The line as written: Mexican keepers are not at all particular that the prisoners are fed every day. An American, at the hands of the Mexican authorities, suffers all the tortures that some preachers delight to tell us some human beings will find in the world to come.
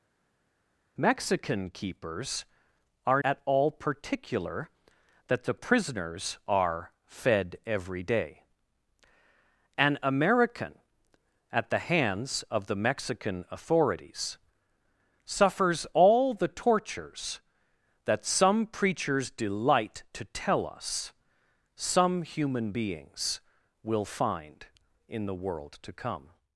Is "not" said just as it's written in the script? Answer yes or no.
no